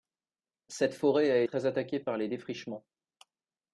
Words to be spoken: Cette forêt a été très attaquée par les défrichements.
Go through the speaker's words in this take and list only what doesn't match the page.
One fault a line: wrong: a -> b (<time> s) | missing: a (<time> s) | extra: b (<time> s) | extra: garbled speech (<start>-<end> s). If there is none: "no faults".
missing: été (1.4 s)